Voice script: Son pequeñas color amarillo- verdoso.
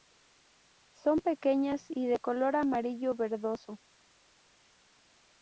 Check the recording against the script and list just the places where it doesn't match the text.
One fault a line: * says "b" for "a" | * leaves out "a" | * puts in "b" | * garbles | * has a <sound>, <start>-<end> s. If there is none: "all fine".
* puts in "y de"